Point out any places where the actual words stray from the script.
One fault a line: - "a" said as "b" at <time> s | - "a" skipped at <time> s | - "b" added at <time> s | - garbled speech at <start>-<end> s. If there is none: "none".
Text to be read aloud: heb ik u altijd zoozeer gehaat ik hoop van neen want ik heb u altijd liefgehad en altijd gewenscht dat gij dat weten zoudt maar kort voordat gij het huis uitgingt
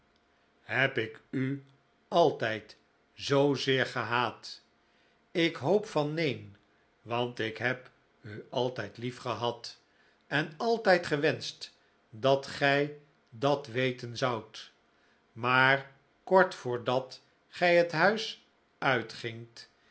none